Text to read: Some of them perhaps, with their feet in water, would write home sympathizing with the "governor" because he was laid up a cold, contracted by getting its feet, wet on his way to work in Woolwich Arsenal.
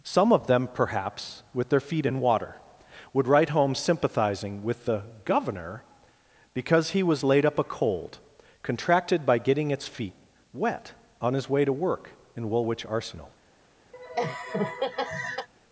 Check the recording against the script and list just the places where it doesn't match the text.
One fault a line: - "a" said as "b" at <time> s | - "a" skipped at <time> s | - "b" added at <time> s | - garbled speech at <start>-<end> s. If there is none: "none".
none